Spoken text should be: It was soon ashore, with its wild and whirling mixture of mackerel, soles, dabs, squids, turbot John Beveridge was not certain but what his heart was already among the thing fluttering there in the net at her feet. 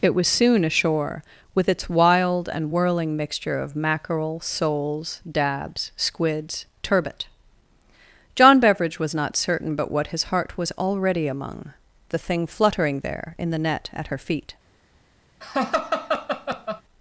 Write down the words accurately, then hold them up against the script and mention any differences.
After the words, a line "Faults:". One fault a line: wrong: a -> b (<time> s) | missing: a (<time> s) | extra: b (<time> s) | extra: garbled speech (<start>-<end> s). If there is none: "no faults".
It was soon ashore, with its wild and whirling mixture of mackerel, soles, dabs, squids, turbot John Beveridge was not certain but what his heart was already among the thing fluttering there in the net at her feet.
Faults:
no faults